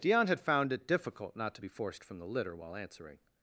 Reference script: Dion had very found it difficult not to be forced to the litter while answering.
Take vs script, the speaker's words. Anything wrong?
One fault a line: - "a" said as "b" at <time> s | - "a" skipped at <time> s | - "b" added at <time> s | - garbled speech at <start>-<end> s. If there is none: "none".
- "very" skipped at 0.4 s
- "to" said as "from" at 2.0 s